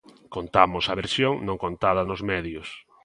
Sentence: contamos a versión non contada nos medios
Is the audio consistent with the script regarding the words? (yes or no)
yes